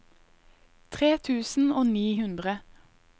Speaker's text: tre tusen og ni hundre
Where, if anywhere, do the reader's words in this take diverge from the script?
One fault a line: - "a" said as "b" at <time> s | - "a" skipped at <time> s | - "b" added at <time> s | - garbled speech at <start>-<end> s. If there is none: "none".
none